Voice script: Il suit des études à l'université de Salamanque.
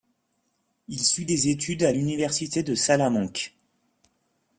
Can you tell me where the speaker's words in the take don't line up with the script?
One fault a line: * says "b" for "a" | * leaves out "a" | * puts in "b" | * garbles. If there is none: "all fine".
all fine